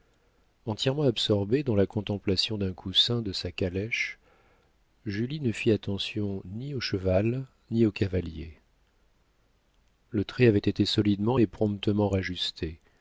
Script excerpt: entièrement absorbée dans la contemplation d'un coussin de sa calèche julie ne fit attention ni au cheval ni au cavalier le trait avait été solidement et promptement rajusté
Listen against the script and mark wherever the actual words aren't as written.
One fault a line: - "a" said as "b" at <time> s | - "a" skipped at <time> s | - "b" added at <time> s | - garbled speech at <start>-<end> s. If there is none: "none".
none